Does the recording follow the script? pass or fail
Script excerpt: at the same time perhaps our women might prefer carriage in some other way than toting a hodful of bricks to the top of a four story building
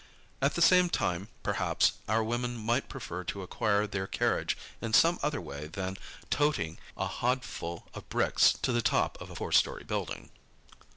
fail